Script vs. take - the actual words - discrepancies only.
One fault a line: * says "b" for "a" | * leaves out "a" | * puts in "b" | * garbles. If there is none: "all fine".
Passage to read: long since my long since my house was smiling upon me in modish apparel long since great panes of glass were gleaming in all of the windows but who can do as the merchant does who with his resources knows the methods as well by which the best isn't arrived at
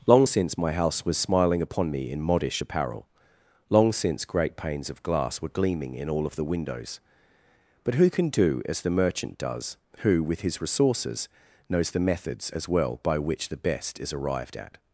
* leaves out "long since my"
* says "is" for "isn't"